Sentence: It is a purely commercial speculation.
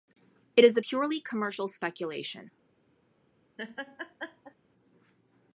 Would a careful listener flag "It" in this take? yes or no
no